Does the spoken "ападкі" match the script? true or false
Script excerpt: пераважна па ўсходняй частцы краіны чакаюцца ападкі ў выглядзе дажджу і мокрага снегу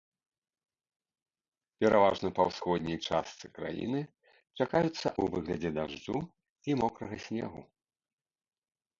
false